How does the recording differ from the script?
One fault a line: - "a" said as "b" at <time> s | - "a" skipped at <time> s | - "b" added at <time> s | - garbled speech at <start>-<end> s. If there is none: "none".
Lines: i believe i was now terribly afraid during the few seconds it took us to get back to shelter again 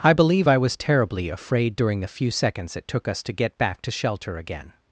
- "now" skipped at 0.8 s